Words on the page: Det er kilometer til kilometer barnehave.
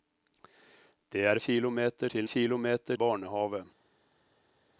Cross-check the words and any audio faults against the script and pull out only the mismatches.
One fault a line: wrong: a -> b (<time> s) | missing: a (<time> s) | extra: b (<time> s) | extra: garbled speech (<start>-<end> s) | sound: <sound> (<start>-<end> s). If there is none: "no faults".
no faults